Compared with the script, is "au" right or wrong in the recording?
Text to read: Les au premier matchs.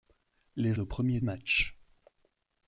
right